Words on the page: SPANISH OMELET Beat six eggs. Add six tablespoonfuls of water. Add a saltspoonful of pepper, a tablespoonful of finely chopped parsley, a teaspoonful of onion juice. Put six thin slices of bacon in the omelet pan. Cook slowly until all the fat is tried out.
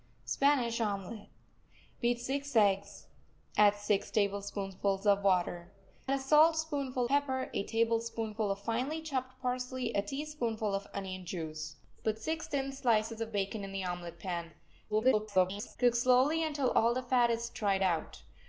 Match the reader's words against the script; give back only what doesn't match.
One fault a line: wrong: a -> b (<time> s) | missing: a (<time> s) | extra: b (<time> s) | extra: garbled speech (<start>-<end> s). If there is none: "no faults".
missing: Add (5.7 s)
missing: of (7.1 s)
extra: garbled speech (14.9-15.8 s)